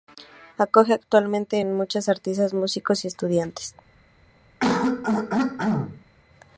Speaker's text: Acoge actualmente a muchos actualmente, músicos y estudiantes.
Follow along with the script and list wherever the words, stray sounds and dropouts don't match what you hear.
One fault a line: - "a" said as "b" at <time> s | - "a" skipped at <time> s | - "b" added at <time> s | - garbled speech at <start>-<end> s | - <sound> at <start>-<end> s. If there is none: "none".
- "actualmente" said as "artistas" at 2.1 s
- throat clearing at 4.6-6.0 s